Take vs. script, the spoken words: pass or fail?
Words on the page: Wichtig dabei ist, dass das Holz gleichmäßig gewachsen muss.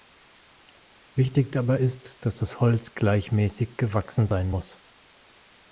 fail